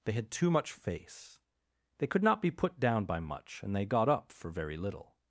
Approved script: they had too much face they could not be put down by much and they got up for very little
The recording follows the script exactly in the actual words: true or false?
true